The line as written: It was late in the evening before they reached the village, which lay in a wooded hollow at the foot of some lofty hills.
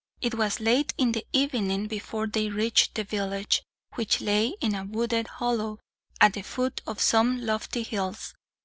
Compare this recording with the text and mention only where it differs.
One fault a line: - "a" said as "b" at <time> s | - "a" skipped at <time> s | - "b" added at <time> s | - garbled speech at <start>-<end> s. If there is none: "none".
none